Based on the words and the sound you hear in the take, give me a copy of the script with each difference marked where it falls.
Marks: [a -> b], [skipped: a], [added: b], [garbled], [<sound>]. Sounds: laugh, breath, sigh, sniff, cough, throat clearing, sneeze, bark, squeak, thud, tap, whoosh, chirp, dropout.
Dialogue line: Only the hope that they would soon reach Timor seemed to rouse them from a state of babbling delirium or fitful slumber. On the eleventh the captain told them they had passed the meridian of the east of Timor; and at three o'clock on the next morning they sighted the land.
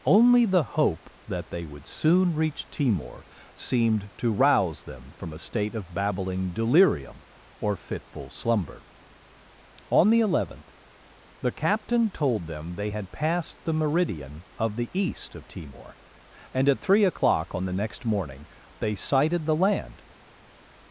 Only the hope that they would soon reach Timor seemed to rouse them from a state of babbling delirium or fitful slumber. On the eleventh the captain told them they had passed the meridian of the east of Timor; and at three o'clock on the next morning they sighted the land.